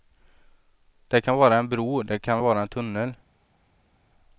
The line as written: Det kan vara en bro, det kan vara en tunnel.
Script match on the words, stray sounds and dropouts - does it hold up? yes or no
yes